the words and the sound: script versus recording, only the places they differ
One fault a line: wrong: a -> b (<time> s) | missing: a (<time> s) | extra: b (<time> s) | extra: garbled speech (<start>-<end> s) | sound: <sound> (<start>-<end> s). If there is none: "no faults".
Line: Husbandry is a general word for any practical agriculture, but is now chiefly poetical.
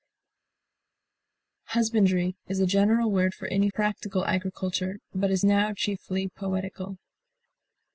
no faults